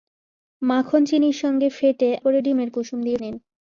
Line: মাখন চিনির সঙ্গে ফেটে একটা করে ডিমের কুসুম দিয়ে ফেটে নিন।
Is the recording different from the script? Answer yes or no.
yes